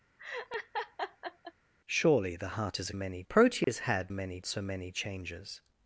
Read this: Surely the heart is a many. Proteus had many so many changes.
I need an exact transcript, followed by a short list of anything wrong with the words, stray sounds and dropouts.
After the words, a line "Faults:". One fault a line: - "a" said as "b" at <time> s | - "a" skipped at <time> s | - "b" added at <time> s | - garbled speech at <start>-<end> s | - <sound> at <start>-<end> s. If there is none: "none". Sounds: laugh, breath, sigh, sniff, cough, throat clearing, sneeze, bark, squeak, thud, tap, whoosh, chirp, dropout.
Surely the heart is a many. Proteus had many so many changes.
Faults:
- laugh at 0.2-1.5 s
- dropout at 3.6-3.7 s